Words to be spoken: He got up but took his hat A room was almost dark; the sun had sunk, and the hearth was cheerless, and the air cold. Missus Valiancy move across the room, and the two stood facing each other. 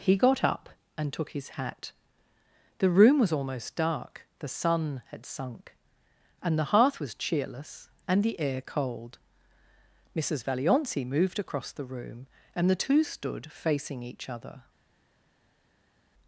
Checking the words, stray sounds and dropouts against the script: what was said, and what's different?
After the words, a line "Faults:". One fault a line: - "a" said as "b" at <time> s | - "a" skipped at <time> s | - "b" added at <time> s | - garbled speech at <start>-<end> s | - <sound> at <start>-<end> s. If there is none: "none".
He got up and took his hat The room was almost dark; the sun had sunk, and the hearth was cheerless, and the air cold. Missus Valiancy moved across the room, and the two stood facing each other.
Faults:
- "but" said as "and" at 1.0 s
- "A" said as "The" at 2.8 s
- "move" said as "moved" at 11.0 s